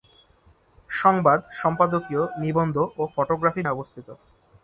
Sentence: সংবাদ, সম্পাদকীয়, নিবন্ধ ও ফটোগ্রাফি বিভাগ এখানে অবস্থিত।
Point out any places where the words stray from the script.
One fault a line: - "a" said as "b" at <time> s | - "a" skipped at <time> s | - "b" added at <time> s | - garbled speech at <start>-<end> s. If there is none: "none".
- "বিভাগ এখানে" skipped at 3.6 s